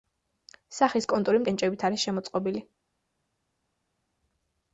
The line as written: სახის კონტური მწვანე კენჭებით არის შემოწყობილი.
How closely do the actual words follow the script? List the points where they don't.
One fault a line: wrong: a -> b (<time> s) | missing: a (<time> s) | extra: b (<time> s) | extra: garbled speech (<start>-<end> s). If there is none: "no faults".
missing: მწვანე (1.4 s)